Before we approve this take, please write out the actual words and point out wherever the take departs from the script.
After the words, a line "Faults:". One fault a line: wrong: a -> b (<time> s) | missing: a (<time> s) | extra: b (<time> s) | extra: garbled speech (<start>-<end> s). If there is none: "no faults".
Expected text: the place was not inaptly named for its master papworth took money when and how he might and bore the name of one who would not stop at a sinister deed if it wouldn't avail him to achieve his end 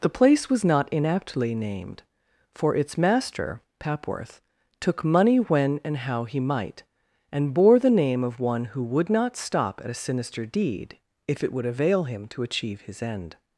the place was not inaptly named for its master papworth took money when and how he might and bore the name of one who would not stop at a sinister deed if it would avail him to achieve his end
Faults:
wrong: wouldn't -> would (11.5 s)